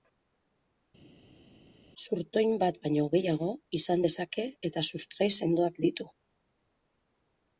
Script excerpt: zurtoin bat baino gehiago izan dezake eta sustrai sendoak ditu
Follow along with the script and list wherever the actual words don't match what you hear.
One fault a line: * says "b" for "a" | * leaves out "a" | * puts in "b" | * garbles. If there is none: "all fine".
all fine